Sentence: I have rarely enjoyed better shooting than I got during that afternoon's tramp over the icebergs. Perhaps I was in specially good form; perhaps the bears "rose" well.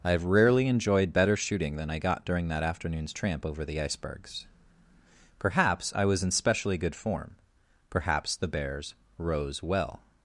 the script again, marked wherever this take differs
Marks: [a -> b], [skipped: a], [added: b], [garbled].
I have rarely enjoyed better shooting than I got during that afternoon's tramp over the icebergs. Perhaps I was in specially good form; perhaps the bears "rose" well.